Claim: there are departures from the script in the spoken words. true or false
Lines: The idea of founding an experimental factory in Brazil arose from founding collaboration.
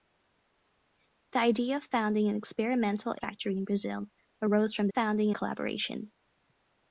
false